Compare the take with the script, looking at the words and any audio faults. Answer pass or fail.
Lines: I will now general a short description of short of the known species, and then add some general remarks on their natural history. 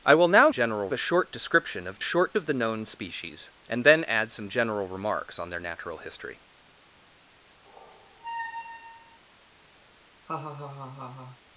fail